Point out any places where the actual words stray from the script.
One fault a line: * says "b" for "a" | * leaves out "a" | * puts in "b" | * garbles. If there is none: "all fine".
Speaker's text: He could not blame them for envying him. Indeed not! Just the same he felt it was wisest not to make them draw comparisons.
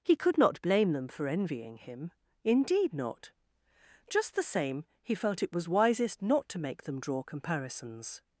all fine